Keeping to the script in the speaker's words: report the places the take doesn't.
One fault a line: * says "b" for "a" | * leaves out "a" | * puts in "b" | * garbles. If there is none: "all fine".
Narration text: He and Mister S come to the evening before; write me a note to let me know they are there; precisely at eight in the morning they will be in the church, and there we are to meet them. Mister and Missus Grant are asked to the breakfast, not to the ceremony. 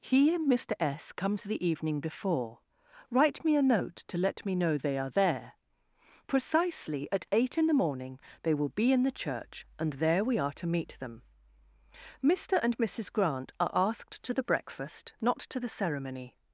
all fine